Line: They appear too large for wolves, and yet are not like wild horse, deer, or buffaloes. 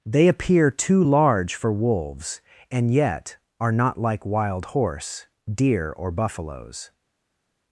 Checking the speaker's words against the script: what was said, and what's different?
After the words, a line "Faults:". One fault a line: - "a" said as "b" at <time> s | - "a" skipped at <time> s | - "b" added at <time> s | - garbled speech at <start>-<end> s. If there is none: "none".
They appear too large for wolves, and yet are not like wild horse, deer, or buffaloes.
Faults:
none